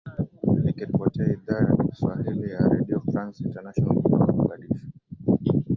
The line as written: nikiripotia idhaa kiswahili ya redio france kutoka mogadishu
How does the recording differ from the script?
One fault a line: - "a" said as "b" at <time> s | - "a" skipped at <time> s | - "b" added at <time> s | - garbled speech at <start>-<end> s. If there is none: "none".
- "ya" added at 1.6 s
- "international" added at 3.4 s